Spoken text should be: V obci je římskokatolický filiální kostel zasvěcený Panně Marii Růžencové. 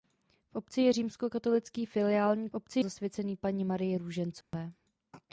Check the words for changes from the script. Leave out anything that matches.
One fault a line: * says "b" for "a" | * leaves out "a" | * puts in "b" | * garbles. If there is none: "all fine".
* says "obci" for "kostel"